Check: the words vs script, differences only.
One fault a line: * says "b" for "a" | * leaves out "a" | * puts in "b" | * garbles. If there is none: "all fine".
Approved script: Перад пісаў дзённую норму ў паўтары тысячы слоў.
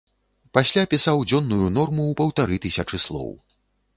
* says "Пасля" for "Перад"